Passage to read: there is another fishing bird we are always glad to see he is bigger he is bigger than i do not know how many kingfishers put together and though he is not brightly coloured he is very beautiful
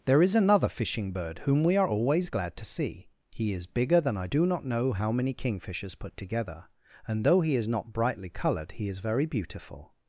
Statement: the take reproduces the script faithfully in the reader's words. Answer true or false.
false